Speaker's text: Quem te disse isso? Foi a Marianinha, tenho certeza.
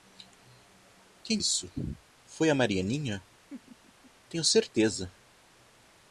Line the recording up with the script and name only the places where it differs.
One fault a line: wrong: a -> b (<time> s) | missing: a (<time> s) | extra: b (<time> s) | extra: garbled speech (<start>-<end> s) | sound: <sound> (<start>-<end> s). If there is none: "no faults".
missing: te disse (1.4 s)
sound: laugh (3.5-4.1 s)